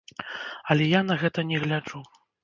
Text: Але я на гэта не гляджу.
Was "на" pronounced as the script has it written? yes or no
yes